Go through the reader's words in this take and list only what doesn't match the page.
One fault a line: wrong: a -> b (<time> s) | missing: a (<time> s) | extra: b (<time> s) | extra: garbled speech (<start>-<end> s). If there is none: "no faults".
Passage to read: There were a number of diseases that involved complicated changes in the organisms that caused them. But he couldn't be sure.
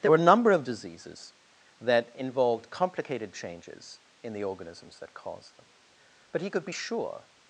wrong: couldn't -> could (6.5 s)